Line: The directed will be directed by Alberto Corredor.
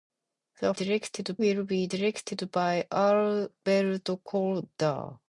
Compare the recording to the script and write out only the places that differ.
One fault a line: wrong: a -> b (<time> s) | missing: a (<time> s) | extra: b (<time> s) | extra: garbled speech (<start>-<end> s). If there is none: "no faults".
no faults